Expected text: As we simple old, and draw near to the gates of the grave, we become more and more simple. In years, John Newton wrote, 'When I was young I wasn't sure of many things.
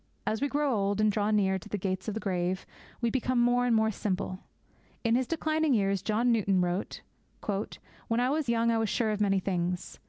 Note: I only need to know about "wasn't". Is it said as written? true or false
false